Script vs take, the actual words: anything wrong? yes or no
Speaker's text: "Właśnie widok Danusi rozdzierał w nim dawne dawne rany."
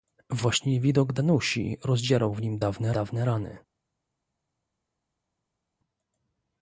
no